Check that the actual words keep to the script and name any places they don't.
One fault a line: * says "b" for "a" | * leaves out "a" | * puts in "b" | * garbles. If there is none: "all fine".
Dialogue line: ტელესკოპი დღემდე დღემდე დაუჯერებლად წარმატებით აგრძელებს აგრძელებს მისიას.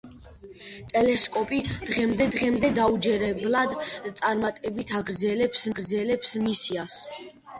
all fine